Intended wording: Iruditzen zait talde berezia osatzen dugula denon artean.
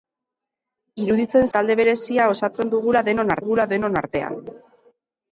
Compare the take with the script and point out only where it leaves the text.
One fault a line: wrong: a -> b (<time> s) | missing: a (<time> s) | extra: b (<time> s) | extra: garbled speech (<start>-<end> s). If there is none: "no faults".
missing: zait (1.4 s)
extra: dugula denon (3.4 s)